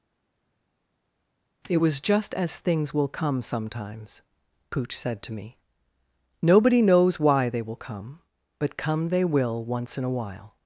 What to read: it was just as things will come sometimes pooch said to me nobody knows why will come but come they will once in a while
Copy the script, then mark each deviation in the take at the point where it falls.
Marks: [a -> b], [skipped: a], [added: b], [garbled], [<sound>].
it was just as things will come sometimes pooch said to me nobody knows why [added: they] will come but come they will once in a while